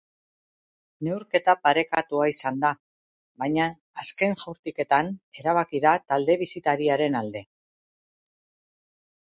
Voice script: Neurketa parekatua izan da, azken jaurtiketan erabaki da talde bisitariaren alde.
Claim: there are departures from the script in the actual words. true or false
true